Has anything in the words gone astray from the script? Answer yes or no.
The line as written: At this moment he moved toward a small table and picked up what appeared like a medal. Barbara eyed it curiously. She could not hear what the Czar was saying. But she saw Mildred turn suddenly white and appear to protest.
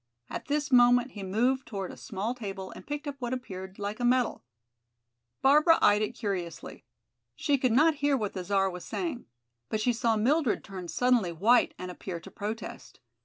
no